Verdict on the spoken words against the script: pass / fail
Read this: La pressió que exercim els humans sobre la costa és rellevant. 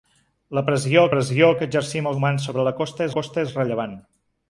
fail